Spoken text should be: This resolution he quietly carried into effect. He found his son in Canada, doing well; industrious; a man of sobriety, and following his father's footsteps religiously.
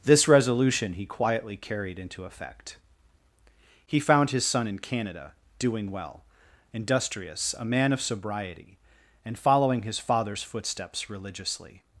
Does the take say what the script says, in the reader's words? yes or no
yes